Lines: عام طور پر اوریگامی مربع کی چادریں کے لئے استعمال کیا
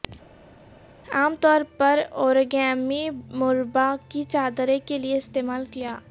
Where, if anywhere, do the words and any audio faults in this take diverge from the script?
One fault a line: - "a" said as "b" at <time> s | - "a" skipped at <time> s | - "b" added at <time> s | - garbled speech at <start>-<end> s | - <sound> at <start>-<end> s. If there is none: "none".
none